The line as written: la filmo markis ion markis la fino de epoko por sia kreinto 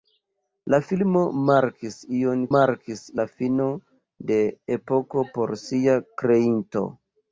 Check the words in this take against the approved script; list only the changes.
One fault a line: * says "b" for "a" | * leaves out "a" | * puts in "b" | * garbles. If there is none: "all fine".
all fine